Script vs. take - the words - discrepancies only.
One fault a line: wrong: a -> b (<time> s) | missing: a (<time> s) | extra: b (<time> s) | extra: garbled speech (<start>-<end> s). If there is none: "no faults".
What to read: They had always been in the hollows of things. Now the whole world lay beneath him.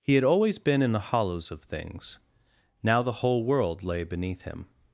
wrong: They -> He (0.0 s)